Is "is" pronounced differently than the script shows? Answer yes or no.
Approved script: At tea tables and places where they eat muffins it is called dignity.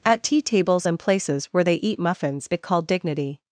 yes